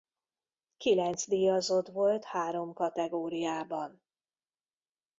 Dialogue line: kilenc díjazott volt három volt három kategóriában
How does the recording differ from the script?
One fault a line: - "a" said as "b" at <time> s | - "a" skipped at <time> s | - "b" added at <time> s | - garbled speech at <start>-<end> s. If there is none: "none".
- "volt három" skipped at 2.7 s